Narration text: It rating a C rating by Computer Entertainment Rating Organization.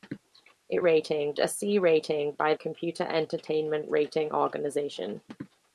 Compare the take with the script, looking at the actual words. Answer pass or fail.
pass